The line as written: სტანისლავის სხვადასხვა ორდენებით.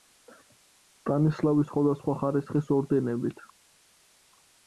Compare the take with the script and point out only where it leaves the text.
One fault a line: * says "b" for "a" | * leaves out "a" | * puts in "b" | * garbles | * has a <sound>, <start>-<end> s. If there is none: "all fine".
* puts in "ხარისხის"